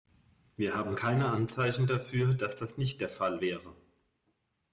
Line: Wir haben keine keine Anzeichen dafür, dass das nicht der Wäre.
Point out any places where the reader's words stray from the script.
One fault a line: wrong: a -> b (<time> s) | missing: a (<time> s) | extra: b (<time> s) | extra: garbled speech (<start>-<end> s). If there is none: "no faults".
missing: keine (1.3 s)
extra: Fall (3.1 s)